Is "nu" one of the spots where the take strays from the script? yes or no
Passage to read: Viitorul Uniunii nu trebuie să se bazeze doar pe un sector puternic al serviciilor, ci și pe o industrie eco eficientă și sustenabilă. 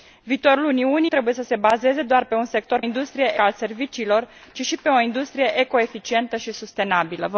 yes